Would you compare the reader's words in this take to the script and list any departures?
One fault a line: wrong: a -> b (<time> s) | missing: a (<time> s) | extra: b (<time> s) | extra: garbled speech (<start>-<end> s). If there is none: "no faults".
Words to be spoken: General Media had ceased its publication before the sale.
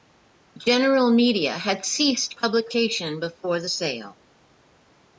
missing: its (2.4 s)